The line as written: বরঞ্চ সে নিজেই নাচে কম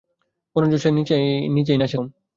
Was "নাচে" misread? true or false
false